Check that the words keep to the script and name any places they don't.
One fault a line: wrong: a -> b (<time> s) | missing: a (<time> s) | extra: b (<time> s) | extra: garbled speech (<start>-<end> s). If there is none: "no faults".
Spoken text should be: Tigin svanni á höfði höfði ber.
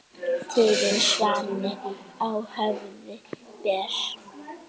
missing: höfði (3.2 s)